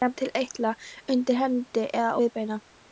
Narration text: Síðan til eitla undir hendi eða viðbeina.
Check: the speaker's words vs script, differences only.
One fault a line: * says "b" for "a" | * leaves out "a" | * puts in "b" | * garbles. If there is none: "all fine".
all fine